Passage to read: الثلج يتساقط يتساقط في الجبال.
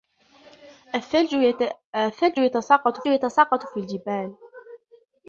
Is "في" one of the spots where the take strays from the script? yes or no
no